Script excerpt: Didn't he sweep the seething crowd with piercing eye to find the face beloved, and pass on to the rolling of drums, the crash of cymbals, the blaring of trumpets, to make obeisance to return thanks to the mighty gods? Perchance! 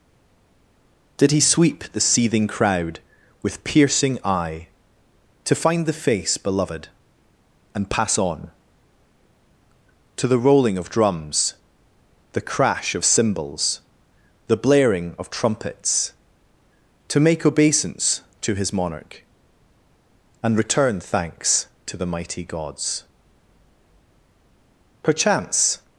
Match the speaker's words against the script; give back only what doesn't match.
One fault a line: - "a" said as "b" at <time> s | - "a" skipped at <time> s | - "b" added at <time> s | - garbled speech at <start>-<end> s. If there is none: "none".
- "Didn't" said as "Did" at 1.2 s
- "his monarch and" added at 18.5 s